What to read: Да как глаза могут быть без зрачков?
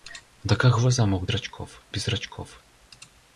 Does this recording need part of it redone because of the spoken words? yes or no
yes